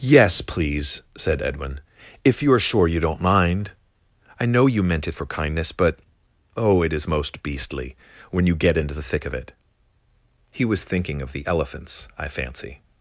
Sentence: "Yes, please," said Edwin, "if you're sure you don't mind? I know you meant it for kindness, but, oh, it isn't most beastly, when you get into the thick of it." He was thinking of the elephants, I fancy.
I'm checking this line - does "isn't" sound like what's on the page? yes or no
no